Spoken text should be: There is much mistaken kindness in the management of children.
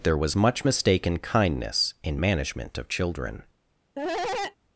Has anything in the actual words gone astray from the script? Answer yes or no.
yes